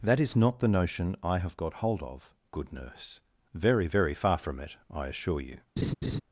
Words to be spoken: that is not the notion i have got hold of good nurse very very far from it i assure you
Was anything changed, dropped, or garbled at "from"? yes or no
no